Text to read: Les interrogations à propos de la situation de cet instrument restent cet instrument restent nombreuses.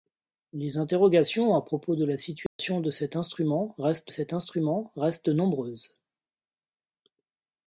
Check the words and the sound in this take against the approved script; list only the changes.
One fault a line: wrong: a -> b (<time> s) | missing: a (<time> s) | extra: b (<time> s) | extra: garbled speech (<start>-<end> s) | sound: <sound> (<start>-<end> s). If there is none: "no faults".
sound: dropout (2.5-2.6 s)